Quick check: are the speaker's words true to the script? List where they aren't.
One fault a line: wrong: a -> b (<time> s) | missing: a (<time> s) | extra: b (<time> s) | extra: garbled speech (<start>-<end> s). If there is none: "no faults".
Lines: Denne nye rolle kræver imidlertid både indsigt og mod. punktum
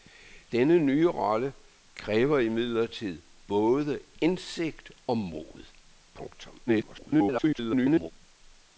extra: garbled speech (6.7-8.1 s)